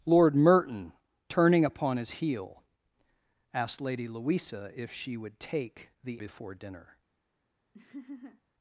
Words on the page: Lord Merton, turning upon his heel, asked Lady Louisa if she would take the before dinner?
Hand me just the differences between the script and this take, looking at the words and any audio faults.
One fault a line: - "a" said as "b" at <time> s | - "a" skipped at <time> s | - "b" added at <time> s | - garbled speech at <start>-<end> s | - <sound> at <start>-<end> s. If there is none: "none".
- laugh at 7.7-8.4 s